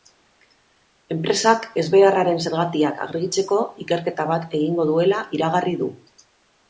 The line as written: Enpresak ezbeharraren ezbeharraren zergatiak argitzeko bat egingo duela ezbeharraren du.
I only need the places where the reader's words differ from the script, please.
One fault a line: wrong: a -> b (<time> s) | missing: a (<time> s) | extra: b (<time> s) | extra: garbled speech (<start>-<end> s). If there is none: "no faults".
missing: ezbeharraren (2.4 s)
extra: ikerketa (3.9 s)
wrong: ezbeharraren -> iragarri (5.4 s)